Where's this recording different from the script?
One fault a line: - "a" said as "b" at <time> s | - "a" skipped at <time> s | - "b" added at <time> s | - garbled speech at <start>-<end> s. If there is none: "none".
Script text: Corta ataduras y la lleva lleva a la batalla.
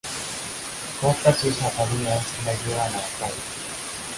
- "sus" added at 1.3 s
- "lleva" skipped at 2.9 s